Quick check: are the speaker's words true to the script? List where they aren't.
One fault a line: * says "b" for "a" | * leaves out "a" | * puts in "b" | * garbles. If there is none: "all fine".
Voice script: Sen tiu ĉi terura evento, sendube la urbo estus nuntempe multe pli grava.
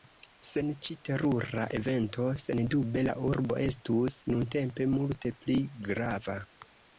* leaves out "tiu"